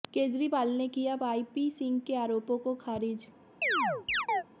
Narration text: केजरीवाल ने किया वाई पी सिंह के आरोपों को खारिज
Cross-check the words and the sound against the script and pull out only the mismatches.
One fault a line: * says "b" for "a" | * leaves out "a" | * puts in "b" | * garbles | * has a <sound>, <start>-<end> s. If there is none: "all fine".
* has a chirp, 3.6-4.4 s